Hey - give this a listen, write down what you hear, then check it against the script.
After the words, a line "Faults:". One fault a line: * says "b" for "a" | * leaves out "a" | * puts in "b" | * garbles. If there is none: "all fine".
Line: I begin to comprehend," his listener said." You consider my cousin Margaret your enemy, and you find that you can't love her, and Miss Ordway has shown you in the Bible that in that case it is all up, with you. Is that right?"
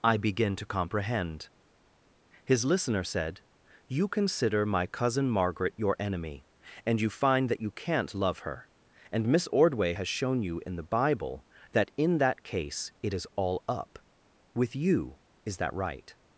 I begin to comprehend," his listener said." You consider my cousin Margaret your enemy, and you find that you can't love her, and Miss Ordway has shown you in the Bible that in that case it is all up, with you. Is that right?"
Faults:
all fine